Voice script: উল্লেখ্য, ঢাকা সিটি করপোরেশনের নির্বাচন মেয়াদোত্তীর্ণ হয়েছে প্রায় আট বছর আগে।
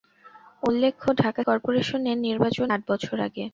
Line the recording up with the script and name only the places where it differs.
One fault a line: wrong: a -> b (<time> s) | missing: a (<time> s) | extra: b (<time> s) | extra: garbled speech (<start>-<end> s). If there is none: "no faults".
missing: সিটি (1.4 s)
missing: মেয়াদোত্তীর্ণ হয়েছে প্রায় (2.7 s)